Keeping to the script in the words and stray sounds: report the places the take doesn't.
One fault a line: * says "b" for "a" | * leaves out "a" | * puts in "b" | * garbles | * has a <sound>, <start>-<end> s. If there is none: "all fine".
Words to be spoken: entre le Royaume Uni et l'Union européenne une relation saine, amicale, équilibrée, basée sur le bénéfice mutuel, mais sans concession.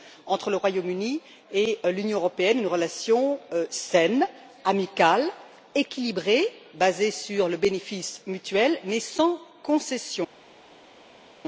all fine